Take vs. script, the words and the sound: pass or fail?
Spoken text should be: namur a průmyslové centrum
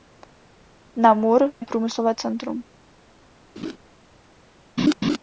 fail